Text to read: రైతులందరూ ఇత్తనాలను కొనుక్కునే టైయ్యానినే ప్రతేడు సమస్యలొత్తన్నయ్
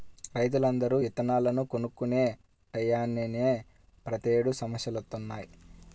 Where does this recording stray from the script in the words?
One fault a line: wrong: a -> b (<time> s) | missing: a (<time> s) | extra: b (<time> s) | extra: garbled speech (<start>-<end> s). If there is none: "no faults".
no faults